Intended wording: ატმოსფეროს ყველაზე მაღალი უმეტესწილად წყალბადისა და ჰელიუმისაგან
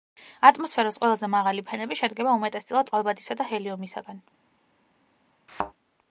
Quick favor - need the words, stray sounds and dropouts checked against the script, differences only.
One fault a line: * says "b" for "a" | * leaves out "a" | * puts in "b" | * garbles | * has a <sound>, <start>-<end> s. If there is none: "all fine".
* puts in "ფენები შედგება"
* has a thud, 5.5-5.7 s